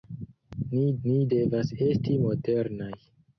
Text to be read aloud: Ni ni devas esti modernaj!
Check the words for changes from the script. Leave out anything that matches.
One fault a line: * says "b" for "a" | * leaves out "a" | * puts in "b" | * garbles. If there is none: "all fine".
all fine